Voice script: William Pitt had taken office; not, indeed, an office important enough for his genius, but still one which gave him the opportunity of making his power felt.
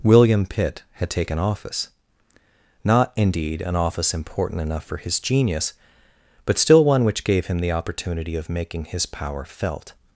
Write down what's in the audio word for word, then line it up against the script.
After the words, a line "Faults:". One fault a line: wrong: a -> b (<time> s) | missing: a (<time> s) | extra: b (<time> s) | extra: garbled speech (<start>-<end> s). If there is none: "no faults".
William Pitt had taken office; not, indeed, an office important enough for his genius, but still one which gave him the opportunity of making his power felt.
Faults:
no faults